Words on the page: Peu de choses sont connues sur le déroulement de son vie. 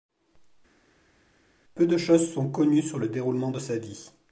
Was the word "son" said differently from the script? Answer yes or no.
yes